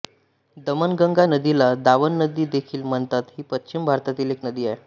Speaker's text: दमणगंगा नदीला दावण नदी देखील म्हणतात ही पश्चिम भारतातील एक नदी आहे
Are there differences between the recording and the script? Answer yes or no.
no